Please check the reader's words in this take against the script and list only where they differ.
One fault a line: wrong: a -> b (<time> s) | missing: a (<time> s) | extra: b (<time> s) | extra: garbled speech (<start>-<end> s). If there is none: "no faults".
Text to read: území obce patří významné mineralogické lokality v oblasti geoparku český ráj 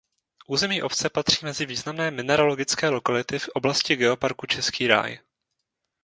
extra: mezi (1.4 s)